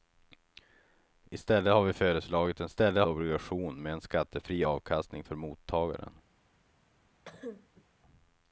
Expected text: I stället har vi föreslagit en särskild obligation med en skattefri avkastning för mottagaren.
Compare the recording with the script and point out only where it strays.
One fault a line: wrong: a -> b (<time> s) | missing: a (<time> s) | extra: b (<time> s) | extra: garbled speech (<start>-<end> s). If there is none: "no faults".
wrong: särskild -> stället (2.7 s)